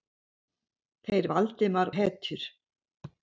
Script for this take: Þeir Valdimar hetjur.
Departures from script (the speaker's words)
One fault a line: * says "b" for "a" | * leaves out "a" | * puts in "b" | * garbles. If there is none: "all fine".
all fine